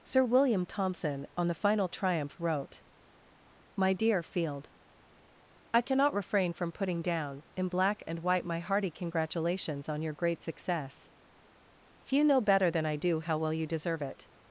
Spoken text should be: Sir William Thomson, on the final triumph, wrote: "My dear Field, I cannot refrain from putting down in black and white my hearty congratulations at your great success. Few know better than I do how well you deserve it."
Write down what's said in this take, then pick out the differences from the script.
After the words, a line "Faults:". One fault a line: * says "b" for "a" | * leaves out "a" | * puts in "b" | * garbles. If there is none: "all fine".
Sir William Thomson, on the final triumph, wrote: "My dear Field, I cannot refrain from putting down in black and white my hearty congratulations on your great success. Few know better than I do how well you deserve it."
Faults:
* says "on" for "at"